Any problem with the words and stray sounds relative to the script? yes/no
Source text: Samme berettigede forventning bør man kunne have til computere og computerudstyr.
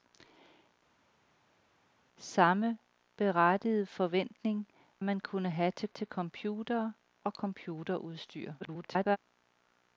yes